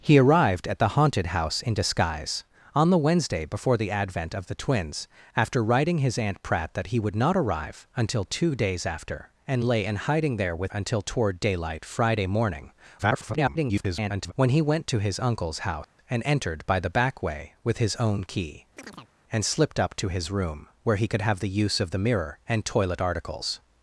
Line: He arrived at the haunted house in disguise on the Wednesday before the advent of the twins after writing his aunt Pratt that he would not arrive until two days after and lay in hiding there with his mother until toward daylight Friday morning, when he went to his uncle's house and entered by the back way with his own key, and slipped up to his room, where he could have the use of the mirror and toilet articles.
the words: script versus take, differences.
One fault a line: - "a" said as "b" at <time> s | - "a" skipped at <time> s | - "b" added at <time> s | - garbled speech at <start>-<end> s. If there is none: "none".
- "his mother" skipped at 10.7 s
- garbled speech at 13.0-14.3 s